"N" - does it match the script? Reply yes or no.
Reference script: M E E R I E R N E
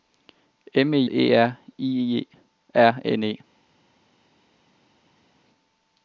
yes